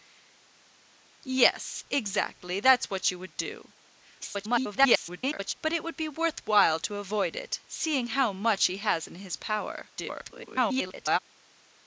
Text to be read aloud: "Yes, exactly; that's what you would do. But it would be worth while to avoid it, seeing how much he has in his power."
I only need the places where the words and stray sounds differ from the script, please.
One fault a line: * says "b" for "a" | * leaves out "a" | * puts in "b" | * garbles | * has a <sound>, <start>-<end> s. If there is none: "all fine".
* garbles
* garbles